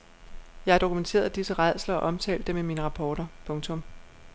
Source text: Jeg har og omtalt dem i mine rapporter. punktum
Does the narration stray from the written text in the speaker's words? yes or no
yes